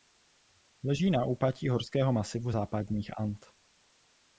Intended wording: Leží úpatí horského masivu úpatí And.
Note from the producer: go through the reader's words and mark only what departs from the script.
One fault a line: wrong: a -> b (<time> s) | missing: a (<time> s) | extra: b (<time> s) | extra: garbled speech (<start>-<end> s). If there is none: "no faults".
extra: na (1.1 s)
wrong: úpatí -> západních (2.5 s)